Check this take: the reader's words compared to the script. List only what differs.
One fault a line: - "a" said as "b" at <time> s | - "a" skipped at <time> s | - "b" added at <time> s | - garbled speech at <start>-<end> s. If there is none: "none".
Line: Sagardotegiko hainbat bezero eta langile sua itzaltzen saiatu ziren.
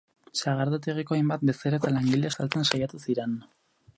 - "sua" skipped at 2.3 s